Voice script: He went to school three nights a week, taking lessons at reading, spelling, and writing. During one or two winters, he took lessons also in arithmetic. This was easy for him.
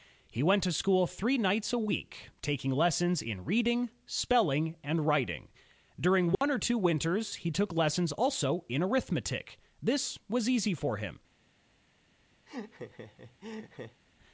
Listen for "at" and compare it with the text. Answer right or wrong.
wrong